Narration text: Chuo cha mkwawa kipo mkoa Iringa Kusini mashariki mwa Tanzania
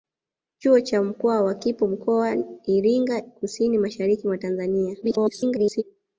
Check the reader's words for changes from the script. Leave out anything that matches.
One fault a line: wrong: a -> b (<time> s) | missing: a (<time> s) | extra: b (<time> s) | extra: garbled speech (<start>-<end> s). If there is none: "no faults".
extra: garbled speech (5.0-5.8 s)